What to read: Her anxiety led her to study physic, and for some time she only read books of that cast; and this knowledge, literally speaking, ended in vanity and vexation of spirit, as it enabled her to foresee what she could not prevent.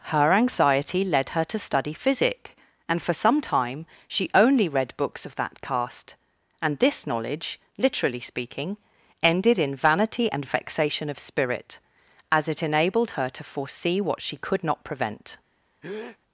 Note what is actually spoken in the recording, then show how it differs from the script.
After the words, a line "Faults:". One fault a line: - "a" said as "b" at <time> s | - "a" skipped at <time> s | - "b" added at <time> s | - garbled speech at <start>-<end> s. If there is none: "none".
Her anxiety led her to study physic, and for some time she only read books of that cast; and this knowledge, literally speaking, ended in vanity and vexation of spirit, as it enabled her to foresee what she could not prevent.
Faults:
none